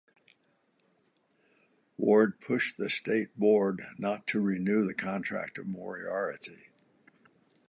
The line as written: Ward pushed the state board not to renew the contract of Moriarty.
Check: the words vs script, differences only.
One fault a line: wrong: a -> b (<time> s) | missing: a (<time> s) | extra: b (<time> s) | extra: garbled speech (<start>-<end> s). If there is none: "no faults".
no faults